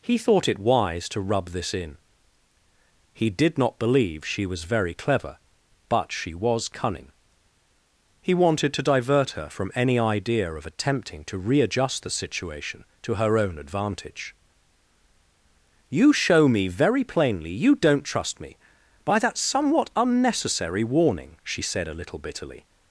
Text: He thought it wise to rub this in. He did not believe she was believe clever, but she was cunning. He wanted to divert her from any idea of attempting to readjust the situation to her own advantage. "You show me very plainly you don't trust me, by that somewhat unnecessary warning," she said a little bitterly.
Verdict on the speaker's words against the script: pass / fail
fail